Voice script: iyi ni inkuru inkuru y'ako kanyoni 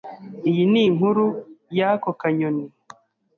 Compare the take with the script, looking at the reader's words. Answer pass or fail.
fail